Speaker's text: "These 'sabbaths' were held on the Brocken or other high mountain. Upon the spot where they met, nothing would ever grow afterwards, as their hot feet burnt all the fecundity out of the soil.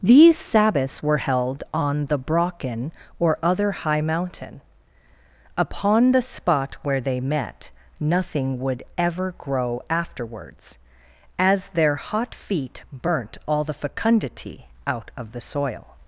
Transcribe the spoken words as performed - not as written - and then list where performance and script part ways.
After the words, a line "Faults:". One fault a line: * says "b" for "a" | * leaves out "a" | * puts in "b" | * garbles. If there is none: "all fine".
"These 'sabbaths' were held on the Brocken or other high mountain. Upon the spot where they met, nothing would ever grow afterwards, as their hot feet burnt all the fecundity out of the soil.
Faults:
all fine